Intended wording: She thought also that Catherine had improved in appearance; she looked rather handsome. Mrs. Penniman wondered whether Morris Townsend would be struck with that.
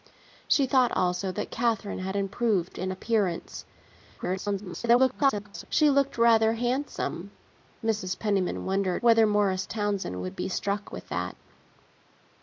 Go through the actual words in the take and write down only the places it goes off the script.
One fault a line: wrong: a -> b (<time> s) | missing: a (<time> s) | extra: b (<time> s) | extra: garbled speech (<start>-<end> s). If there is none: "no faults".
extra: garbled speech (4.2-5.6 s)